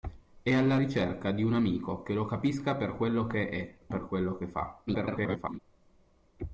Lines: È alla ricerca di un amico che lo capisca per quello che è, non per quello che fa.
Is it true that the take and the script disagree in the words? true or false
true